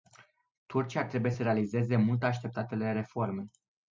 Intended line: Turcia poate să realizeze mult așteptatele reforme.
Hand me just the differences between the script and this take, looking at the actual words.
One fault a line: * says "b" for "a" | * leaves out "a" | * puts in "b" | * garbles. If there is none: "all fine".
* says "trebuie" for "poate"